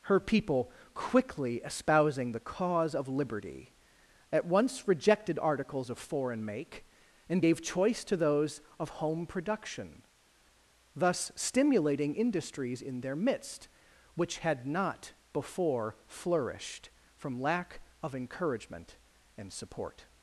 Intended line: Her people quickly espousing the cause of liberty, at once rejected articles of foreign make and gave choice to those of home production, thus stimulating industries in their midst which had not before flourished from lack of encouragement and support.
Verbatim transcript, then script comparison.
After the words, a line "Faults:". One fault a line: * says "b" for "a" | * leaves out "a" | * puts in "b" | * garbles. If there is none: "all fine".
Her people quickly espousing the cause of liberty, at once rejected articles of foreign make and gave choice to those of home production, thus stimulating industries in their midst which had not before flourished from lack of encouragement and support.
Faults:
all fine